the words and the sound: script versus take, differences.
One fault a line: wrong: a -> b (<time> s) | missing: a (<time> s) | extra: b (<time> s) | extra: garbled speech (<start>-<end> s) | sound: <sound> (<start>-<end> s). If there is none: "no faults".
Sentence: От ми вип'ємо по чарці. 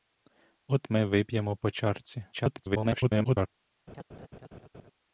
extra: garbled speech (2.3-3.5 s)
sound: laugh (3.9-4.9 s)